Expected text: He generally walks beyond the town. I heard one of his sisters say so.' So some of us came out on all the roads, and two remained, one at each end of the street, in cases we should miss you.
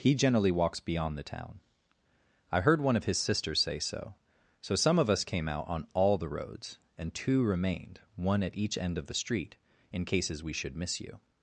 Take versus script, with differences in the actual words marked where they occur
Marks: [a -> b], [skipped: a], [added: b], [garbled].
He generally walks beyond the town. I heard one of his sisters say so.' So some of us came out on all the roads, and two remained, one at each end of the street, in cases we should miss you.